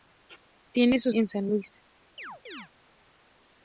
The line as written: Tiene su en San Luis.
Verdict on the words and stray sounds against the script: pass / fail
fail